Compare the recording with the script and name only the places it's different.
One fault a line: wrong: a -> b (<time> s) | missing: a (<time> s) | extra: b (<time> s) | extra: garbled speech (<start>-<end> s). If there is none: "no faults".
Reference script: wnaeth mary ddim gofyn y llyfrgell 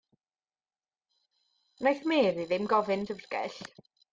no faults